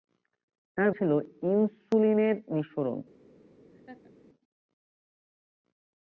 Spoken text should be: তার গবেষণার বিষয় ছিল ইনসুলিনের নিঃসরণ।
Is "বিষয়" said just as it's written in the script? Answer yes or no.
no